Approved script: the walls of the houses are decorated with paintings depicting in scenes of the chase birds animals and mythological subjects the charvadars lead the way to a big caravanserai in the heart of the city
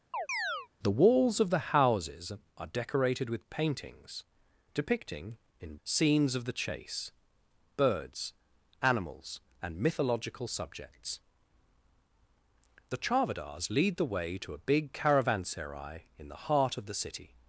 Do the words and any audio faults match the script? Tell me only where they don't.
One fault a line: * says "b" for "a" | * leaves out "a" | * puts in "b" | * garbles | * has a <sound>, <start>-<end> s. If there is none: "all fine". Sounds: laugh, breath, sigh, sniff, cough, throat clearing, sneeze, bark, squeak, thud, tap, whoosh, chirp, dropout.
* has a chirp, 0.1-0.7 s